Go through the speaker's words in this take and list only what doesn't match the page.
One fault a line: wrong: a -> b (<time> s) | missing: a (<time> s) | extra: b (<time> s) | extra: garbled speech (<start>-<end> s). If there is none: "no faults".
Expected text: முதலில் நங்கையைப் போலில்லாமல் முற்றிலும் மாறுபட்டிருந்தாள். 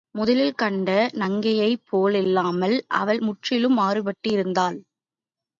extra: கண்ட (0.6 s)
extra: அவள் (2.9 s)